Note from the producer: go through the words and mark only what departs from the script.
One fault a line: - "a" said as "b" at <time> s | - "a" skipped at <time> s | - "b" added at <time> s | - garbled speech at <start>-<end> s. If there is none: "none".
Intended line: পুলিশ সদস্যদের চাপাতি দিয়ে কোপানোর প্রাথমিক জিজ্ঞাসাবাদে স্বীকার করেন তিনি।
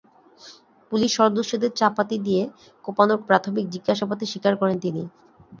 none